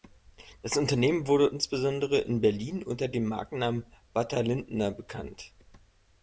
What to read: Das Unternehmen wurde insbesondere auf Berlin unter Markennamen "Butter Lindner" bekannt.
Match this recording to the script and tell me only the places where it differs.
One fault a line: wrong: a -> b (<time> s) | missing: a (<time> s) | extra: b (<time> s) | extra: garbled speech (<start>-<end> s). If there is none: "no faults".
wrong: auf -> in (2.2 s)
extra: dem (3.1 s)